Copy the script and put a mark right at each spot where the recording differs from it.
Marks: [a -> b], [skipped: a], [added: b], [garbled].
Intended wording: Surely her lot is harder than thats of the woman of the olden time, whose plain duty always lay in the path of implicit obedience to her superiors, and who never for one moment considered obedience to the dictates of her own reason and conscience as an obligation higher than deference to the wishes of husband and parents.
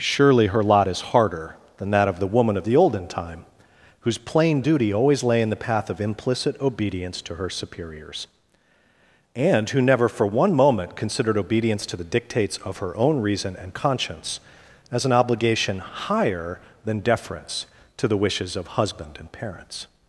Surely her lot is harder than [thats -> that] of the woman of the olden time, whose plain duty always lay in the path of implicit obedience to her superiors, and who never for one moment considered obedience to the dictates of her own reason and conscience as an obligation higher than deference to the wishes of husband and parents.